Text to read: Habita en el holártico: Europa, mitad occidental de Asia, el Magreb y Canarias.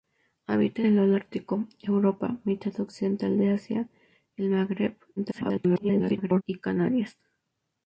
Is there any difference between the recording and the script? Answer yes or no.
yes